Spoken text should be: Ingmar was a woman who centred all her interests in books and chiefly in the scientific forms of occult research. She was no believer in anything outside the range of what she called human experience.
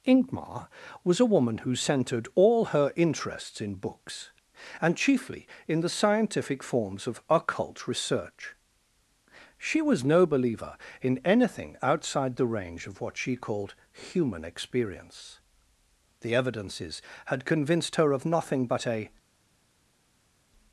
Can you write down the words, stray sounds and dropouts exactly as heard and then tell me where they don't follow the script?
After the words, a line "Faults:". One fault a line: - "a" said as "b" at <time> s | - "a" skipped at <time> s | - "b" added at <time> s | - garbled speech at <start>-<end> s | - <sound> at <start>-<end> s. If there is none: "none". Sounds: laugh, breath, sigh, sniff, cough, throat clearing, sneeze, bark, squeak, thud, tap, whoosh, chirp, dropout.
Ingmar was a woman who centred all her interests in books and chiefly in the scientific forms of occult research. She was no believer in anything outside the range of what she called human experience. The evidences had convinced her of nothing but a
Faults:
- "The evidences had convinced her of nothing but a" added at 16.2 s